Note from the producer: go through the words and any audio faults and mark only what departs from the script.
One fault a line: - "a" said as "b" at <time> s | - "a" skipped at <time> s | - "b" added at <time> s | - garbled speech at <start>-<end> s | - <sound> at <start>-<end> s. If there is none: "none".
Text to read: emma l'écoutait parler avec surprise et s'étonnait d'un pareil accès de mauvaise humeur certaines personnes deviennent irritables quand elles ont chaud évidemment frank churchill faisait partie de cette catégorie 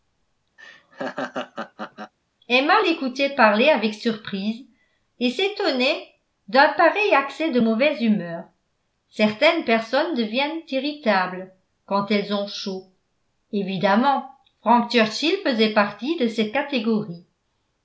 - laugh at 0.6-2.1 s